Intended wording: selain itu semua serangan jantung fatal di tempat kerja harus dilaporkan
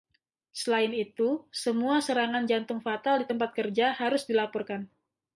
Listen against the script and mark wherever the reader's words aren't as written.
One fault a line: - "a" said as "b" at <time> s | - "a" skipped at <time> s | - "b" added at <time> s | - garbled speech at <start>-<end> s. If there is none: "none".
none